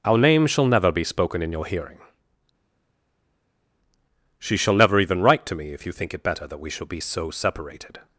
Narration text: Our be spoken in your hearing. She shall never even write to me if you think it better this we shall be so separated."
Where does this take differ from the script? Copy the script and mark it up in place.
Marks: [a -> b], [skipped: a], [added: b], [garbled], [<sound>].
Our [added: name shall never] be spoken in your hearing. She shall never even write to me if you think it better [this -> that] we shall be so separated."